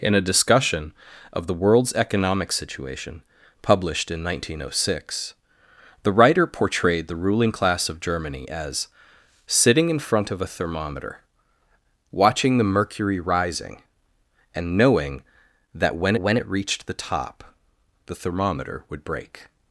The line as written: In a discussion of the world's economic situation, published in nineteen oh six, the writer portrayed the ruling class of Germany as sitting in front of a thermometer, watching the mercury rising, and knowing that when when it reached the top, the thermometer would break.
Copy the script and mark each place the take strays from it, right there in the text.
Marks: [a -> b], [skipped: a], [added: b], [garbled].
In a discussion of the world's economic situation, published in nineteen oh six, the writer portrayed the ruling class of Germany as sitting in front of a thermometer, watching the mercury rising, and knowing that when when it reached the top, the thermometer would break.